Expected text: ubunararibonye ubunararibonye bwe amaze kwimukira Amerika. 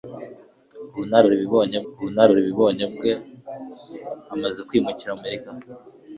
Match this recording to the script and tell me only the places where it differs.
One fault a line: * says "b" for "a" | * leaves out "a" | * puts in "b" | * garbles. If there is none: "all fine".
all fine